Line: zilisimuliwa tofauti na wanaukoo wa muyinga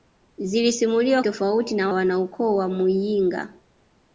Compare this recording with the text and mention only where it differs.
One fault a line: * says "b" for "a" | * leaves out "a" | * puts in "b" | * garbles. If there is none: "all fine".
all fine